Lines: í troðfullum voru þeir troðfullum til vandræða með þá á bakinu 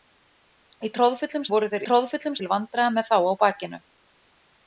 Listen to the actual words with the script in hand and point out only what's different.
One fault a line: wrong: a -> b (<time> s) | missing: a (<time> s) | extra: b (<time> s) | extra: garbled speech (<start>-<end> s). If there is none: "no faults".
no faults